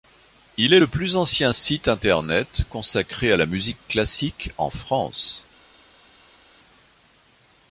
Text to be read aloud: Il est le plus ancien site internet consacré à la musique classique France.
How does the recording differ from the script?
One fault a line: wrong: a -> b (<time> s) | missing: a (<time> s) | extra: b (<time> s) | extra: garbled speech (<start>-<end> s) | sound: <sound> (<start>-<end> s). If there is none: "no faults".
extra: en (4.6 s)